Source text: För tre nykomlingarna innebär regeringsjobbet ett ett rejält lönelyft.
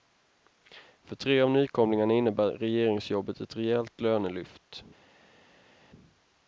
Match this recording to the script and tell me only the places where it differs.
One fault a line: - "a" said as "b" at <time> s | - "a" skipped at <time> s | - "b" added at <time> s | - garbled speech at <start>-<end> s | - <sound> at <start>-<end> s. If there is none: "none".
- "av" added at 1.4 s
- "ett" skipped at 3.5 s